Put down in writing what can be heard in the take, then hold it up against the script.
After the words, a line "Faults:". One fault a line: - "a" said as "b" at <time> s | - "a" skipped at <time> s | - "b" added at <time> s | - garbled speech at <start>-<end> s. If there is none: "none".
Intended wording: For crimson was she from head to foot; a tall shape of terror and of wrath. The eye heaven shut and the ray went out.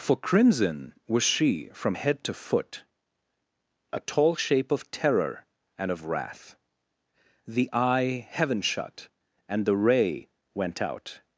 For crimson was she from head to foot; a tall shape of terror and of wrath. The eye heaven shut and the ray went out.
Faults:
none